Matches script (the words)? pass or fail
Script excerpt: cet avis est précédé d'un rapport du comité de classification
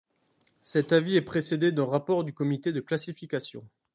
pass